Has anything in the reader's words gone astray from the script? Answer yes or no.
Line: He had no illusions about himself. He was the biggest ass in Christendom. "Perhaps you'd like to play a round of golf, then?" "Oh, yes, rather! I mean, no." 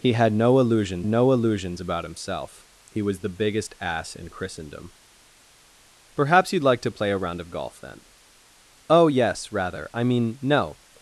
yes